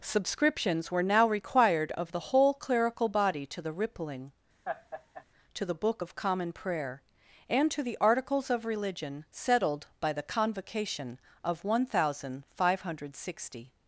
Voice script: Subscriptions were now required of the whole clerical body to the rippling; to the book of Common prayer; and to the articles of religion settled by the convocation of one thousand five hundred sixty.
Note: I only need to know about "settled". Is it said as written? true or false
true